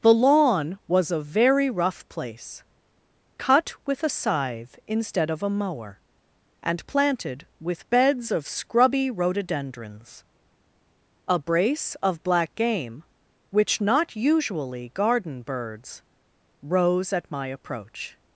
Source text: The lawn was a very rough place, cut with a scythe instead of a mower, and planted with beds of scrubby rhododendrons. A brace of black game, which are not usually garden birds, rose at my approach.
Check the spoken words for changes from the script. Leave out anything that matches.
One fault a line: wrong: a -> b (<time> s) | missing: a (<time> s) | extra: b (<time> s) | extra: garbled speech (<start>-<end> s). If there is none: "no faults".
missing: are (13.8 s)